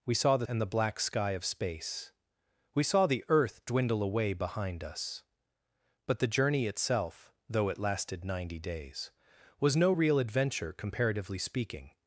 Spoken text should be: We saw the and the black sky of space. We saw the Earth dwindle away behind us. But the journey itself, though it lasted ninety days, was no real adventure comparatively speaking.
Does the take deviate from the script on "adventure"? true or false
false